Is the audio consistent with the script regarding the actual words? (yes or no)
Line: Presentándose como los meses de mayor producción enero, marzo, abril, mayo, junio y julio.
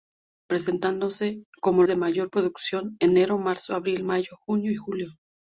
no